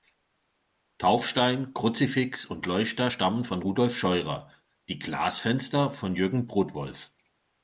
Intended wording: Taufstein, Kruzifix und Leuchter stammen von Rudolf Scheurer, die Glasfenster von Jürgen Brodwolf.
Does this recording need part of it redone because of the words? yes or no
no